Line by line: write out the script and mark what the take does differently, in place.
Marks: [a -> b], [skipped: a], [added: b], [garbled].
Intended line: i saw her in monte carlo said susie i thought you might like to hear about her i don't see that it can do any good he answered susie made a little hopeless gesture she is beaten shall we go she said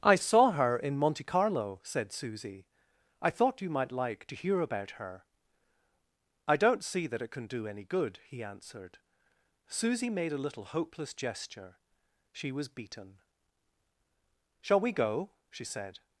i saw her in monte carlo said susie i thought you might like to hear about her i don't see that it can do any good he answered susie made a little hopeless gesture she [is -> was] beaten shall we go she said